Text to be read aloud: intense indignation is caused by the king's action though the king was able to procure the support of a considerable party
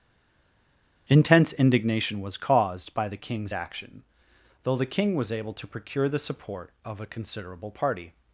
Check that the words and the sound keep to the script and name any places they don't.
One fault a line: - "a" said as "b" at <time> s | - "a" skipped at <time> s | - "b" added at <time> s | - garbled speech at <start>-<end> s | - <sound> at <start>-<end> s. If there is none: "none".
- "is" said as "was" at 2.2 s